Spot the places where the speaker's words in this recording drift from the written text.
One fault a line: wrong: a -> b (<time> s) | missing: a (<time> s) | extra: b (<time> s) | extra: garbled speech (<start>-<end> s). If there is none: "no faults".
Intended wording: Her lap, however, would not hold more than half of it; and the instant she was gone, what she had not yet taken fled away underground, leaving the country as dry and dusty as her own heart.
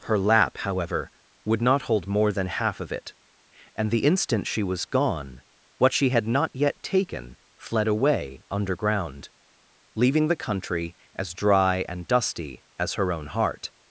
no faults